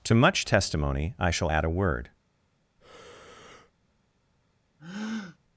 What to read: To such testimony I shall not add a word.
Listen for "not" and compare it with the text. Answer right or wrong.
wrong